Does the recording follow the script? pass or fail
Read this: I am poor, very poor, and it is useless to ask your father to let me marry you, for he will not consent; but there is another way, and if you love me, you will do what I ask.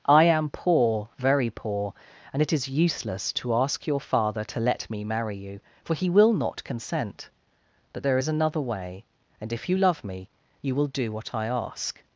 pass